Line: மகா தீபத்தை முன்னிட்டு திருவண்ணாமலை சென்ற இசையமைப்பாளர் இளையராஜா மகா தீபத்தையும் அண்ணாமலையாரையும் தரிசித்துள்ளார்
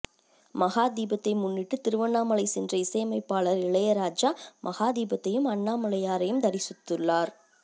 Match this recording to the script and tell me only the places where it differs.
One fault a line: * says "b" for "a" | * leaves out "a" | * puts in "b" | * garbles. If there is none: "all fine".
all fine